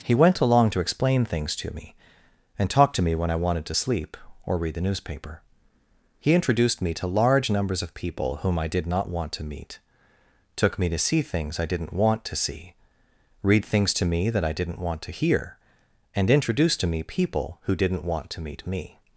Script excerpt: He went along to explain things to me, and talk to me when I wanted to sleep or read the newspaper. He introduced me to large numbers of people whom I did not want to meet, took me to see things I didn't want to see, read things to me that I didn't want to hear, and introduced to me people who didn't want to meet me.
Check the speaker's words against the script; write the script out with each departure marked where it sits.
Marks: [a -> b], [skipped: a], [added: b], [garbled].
He went along to explain things to me, and talk to me when I wanted to sleep or read the newspaper. He introduced me to large numbers of people whom I did not want to meet, took me to see things I didn't want to see, read things to me that I didn't want to hear, and introduced to me people who didn't want to meet me.